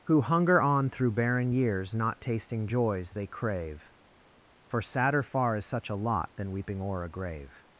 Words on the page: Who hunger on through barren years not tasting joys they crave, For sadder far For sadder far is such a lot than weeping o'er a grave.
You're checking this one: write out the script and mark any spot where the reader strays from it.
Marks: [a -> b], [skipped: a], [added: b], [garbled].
Who hunger on through barren years not tasting joys they crave, For sadder far [skipped: For sadder far] is such a lot than weeping o'er a grave.